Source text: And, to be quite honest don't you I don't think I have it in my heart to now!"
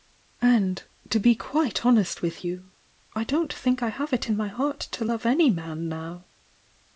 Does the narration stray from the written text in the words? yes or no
yes